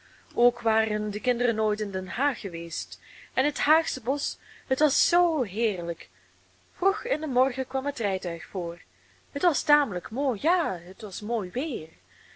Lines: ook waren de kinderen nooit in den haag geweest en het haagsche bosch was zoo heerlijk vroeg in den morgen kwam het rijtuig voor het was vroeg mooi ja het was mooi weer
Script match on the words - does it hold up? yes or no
no